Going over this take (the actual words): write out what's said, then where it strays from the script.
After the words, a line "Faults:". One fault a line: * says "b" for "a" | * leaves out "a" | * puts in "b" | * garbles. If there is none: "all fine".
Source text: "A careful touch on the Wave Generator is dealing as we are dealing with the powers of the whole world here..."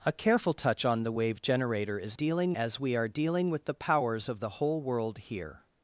"A careful touch on the Wave Generator is dealing as we are dealing with the powers of the whole world here..."
Faults:
all fine